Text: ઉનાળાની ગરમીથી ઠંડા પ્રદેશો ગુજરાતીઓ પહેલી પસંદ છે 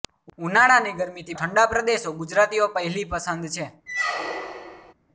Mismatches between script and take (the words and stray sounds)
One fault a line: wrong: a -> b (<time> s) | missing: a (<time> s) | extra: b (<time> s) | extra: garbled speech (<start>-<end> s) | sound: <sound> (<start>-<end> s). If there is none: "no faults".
sound: squeak (3.9-4.9 s)